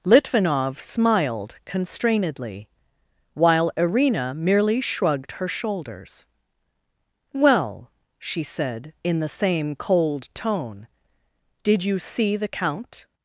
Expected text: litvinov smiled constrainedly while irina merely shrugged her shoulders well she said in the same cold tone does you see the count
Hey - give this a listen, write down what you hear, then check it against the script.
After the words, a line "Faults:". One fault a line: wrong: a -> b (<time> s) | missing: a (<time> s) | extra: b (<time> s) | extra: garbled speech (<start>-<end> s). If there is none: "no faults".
litvinov smiled constrainedly while irina merely shrugged her shoulders well she said in the same cold tone did you see the count
Faults:
wrong: does -> did (11.6 s)